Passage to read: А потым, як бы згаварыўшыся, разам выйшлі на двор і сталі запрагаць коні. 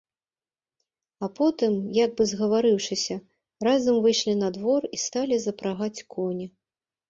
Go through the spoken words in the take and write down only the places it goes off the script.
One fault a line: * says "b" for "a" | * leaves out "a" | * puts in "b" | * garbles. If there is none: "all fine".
all fine